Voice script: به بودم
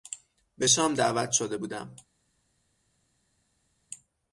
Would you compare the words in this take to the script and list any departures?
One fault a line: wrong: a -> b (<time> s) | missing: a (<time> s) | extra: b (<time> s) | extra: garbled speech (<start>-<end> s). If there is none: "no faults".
extra: شام دعوت شده (0.7 s)